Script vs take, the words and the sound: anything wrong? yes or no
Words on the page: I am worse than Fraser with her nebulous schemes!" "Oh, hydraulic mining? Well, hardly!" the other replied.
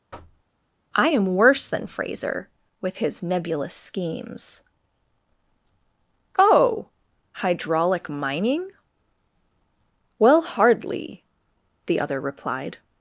yes